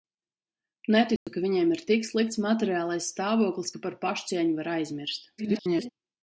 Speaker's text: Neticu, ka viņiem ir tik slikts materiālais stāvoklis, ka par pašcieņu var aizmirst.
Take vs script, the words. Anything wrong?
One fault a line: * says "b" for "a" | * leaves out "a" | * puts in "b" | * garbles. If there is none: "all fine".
* garbles